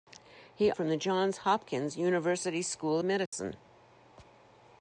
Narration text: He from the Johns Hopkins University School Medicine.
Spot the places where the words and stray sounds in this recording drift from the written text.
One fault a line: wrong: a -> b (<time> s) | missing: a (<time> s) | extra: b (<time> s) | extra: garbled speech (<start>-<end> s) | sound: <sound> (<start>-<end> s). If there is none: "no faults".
sound: dropout (3.3-3.3 s)